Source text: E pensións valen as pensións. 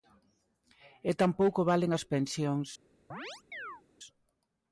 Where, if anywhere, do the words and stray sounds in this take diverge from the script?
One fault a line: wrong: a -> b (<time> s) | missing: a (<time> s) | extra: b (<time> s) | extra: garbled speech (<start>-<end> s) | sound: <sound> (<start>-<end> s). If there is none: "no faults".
wrong: pensións -> tampouco (1.2 s)
sound: chirp (3.1-3.8 s)